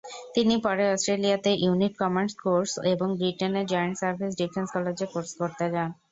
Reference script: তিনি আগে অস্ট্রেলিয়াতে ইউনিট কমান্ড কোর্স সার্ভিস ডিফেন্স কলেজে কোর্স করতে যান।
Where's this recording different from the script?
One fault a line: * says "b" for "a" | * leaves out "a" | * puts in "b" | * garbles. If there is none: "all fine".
* says "পরে" for "আগে"
* puts in "এবং ব্রিটেনের জয়েন্ট"